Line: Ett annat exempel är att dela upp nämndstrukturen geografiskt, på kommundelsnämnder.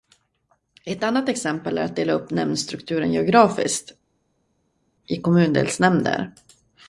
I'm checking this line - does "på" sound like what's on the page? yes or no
no